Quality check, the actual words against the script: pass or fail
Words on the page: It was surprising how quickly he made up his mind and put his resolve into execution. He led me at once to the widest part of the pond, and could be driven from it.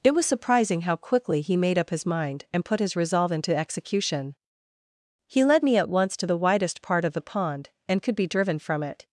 pass